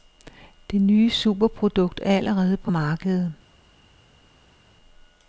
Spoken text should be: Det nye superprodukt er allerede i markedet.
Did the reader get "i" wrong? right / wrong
wrong